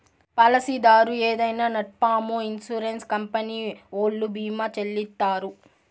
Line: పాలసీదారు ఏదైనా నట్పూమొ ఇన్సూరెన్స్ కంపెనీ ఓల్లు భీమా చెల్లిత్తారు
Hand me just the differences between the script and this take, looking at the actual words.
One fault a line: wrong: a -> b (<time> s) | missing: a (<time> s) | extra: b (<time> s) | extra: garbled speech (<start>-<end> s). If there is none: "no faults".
no faults